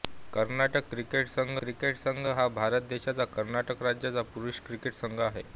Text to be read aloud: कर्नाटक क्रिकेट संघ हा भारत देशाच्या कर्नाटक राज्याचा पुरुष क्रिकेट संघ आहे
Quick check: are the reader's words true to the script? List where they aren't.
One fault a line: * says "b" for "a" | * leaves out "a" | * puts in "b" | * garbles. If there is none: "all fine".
* puts in "क्रिकेट संघ"